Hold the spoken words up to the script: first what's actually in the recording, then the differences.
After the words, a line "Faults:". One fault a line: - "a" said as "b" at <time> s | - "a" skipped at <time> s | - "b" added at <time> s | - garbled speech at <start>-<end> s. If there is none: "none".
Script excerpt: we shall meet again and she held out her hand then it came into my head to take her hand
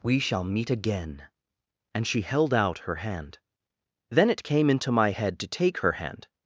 we shall meet again and she held out her hand then it came into my head to take her hand
Faults:
none